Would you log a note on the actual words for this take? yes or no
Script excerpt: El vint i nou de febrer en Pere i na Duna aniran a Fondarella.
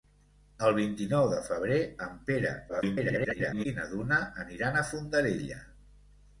yes